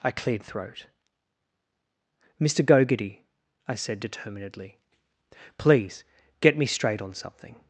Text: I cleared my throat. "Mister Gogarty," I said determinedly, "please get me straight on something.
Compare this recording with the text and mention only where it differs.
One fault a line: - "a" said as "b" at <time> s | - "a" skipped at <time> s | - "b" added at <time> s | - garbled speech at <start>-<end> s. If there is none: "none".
- "my" skipped at 0.4 s